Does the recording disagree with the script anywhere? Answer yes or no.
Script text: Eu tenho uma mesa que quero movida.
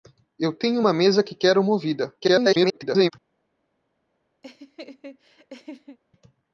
yes